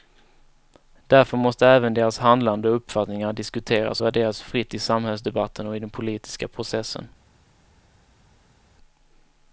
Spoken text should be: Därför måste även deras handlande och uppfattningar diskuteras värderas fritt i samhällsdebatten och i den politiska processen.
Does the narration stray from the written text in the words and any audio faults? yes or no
no